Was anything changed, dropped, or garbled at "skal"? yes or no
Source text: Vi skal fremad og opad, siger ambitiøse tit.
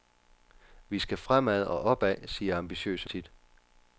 no